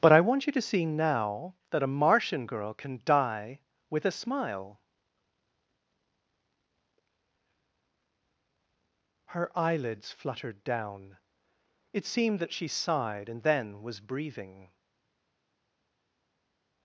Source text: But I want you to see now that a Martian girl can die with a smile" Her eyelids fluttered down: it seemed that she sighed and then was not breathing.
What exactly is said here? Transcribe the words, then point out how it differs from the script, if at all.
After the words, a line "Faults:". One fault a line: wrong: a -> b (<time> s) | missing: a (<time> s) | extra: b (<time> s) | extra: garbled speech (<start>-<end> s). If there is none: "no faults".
But I want you to see now that a Martian girl can die with a smile" Her eyelids fluttered down: it seemed that she sighed and then was breathing.
Faults:
missing: not (14.0 s)